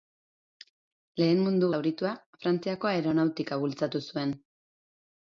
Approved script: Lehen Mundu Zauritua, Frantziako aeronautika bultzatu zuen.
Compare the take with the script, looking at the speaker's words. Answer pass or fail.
pass